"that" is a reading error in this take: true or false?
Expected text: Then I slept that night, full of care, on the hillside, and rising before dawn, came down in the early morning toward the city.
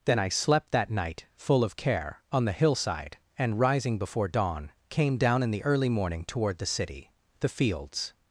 false